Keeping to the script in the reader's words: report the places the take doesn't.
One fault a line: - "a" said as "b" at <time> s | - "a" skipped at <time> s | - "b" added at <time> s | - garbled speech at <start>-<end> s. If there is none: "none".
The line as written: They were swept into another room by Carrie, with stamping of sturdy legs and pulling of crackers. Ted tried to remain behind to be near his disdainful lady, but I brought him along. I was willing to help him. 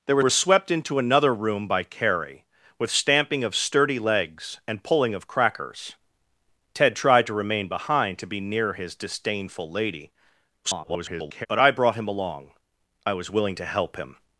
- "were" added at 0.2 s
- garbled speech at 10.6-11.5 s